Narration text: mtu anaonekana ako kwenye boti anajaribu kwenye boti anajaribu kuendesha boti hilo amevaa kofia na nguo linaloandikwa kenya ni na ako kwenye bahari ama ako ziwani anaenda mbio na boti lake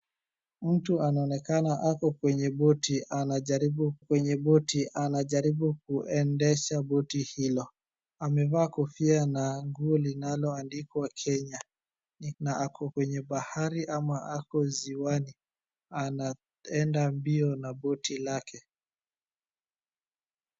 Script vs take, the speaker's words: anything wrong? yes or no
no